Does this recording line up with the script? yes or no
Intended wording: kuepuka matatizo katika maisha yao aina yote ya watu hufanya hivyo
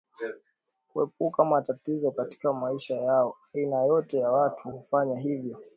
yes